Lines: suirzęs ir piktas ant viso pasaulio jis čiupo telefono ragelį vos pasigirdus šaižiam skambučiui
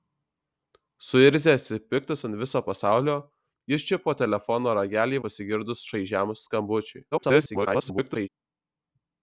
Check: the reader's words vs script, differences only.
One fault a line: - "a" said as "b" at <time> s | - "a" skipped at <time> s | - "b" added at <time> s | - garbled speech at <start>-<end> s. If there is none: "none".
- "vos" skipped at 5.2 s
- garbled speech at 7.1-8.3 s